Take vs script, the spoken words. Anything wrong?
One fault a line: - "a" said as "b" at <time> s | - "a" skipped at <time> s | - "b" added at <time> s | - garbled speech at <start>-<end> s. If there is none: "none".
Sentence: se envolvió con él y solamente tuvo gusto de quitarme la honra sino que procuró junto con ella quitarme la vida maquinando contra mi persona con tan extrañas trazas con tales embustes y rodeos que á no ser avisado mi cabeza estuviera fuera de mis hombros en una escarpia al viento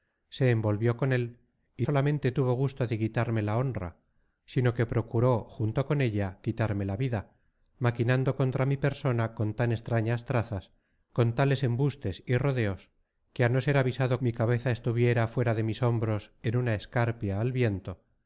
none